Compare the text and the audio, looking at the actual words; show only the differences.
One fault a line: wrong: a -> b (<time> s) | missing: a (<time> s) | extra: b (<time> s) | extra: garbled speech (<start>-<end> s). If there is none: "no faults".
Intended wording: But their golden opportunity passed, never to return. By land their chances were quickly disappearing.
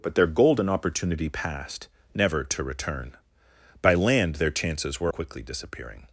no faults